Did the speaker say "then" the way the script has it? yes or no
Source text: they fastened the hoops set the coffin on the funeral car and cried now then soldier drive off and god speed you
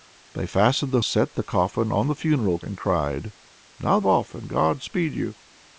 no